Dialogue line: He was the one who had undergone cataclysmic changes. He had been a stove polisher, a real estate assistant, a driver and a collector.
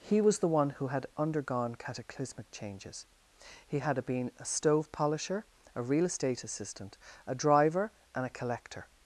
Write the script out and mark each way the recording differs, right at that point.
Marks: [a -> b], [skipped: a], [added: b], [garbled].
He was the one who had undergone cataclysmic changes. He had been a stove polisher, a real estate assistant, a driver and a collector.